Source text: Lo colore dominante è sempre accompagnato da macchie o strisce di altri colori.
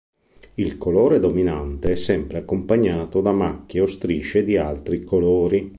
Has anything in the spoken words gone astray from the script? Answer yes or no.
yes